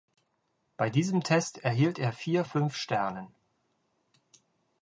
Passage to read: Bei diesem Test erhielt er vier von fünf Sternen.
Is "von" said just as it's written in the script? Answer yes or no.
no